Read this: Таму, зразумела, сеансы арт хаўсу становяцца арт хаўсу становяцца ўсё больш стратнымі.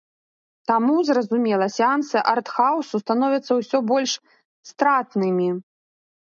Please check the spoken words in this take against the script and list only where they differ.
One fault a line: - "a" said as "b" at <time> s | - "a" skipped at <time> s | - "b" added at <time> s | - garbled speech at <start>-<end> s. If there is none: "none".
- "арт хаўсу становяцца" skipped at 3.5 s